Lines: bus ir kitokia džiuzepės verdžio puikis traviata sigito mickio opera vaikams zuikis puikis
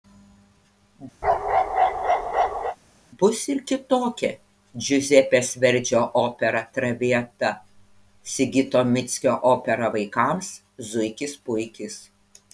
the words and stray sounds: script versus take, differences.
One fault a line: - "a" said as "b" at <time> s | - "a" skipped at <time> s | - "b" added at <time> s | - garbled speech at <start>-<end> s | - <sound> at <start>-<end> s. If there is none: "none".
- bark at 1.2-2.8 s
- "puikis" said as "opera" at 6.2 s